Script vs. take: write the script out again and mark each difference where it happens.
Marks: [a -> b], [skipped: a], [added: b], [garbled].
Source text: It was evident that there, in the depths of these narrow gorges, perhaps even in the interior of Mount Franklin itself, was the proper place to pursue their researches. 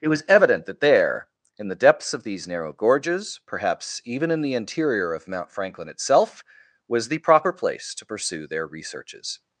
It was evident that there, in the depths of these narrow gorges, perhaps even in the interior of Mount Franklin itself, was the proper place to pursue their researches.